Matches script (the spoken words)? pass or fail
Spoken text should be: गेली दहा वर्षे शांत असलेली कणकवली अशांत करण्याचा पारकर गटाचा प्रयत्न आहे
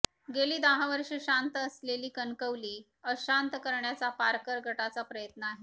pass